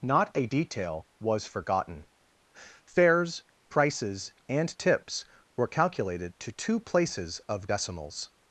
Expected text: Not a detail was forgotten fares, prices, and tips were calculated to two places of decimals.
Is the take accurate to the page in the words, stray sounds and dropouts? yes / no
yes